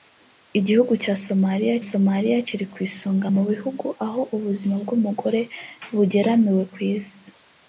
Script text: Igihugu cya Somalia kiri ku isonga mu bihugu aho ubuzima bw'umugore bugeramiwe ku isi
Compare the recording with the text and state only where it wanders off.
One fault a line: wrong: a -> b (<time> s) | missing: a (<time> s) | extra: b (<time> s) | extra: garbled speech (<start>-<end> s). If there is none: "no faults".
extra: Somalia (1.9 s)